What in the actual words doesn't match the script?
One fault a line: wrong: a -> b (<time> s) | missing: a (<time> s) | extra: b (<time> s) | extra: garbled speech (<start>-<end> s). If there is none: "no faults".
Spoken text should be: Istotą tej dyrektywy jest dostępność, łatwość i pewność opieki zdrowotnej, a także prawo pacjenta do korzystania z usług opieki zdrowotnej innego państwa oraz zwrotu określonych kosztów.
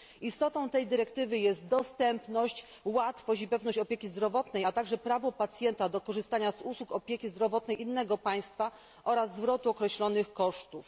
no faults